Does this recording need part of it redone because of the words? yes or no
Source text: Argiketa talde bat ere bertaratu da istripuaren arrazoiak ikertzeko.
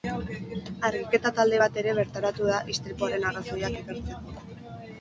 no